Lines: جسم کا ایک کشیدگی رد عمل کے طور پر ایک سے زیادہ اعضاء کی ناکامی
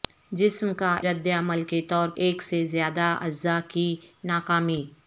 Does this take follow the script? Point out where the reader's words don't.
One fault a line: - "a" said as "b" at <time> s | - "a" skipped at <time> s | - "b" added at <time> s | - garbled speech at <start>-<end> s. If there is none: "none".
- "ایک کشیدگی" skipped at 0.9 s
- "پر" skipped at 2.1 s